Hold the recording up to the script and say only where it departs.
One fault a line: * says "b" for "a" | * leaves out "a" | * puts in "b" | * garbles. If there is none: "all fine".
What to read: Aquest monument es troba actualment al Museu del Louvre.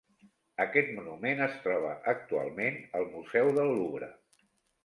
all fine